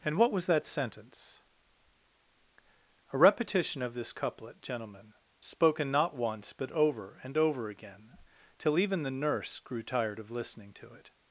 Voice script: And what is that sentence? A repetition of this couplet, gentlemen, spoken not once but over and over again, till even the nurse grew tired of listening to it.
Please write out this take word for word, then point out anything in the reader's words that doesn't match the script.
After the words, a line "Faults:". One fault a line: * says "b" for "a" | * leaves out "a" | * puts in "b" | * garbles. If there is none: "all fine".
And what was that sentence? A repetition of this couplet, gentlemen, spoken not once but over and over again, till even the nurse grew tired of listening to it.
Faults:
* says "was" for "is"